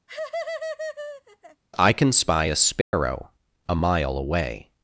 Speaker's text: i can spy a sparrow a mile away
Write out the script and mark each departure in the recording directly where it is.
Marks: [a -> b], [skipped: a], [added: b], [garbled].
i can spy a sparrow a mile away